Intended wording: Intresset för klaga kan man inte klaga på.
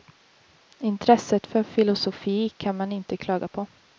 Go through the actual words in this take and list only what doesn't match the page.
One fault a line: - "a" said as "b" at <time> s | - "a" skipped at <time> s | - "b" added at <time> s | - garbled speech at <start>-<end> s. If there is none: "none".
- "klaga" said as "filosofi" at 1.6 s